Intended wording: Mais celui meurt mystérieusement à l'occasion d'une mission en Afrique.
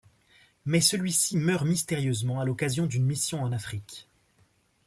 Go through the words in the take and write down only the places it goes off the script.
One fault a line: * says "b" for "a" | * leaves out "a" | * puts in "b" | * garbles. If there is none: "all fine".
* puts in "ci"